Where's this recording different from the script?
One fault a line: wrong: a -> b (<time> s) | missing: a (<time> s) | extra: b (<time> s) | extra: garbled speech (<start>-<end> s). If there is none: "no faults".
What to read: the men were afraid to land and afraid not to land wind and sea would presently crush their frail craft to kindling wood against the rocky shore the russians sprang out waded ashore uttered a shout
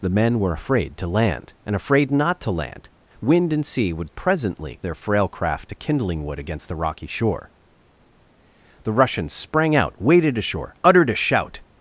missing: crush (4.8 s)